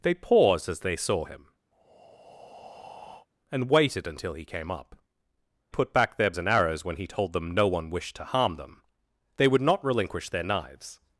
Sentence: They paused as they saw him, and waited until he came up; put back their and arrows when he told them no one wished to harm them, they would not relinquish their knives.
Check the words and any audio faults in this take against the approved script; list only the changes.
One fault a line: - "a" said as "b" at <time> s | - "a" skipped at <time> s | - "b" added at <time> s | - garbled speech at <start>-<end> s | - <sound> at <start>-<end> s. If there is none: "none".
- breath at 1.7-3.3 s